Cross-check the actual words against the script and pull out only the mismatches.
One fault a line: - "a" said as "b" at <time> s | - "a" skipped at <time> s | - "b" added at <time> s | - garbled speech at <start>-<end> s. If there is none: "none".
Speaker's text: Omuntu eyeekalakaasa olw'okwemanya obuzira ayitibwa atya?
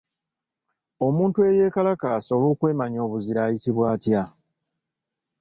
none